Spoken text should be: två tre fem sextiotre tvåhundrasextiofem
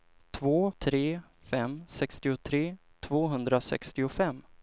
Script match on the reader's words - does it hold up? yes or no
yes